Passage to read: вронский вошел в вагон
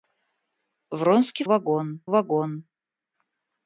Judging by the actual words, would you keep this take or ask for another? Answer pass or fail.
fail